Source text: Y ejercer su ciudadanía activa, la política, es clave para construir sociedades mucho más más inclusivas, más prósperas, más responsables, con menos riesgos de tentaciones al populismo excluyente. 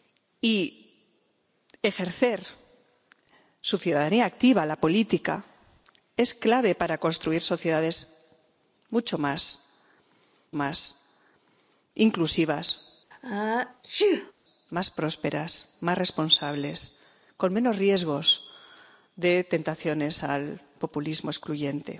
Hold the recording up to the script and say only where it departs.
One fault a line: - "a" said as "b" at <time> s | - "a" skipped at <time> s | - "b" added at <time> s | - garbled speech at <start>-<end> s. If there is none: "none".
none